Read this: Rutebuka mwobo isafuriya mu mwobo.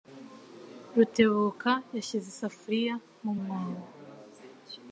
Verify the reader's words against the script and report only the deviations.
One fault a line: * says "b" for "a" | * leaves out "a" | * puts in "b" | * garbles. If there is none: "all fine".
* says "yashyize" for "mwobo"